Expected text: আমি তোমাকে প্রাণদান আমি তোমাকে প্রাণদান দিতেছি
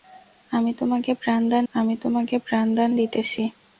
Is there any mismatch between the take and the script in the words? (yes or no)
no